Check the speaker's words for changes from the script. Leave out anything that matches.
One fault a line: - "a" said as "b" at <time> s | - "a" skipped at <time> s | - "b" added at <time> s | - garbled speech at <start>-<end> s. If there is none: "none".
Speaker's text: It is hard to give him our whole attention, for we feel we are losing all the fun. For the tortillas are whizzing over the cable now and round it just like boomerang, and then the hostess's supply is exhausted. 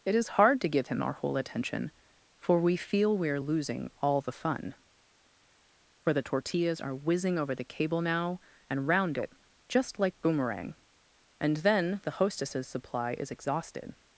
none